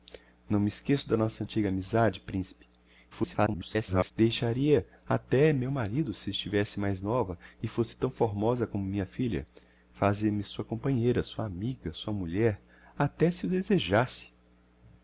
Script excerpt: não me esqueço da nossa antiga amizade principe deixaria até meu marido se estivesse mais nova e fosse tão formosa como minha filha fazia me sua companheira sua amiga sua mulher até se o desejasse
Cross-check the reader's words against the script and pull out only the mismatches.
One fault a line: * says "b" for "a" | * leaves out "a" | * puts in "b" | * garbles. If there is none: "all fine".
* garbles